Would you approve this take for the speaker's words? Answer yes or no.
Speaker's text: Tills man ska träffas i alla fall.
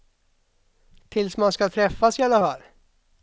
yes